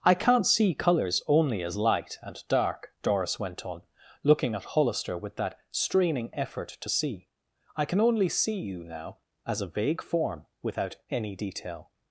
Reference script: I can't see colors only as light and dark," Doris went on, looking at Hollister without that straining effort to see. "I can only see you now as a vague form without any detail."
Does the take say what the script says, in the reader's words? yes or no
no